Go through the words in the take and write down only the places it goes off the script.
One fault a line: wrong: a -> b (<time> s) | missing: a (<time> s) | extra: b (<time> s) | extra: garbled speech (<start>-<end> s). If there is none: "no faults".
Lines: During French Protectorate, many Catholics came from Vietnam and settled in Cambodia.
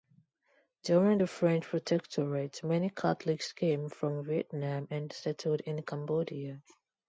extra: the (1.2 s)